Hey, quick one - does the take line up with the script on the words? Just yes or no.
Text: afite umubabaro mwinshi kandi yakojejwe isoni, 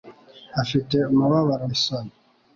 no